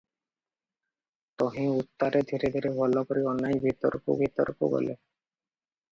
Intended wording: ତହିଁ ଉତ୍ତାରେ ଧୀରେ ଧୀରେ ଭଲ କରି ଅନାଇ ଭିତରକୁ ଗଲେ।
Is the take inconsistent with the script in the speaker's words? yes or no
yes